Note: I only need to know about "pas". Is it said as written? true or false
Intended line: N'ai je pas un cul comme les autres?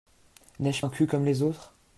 false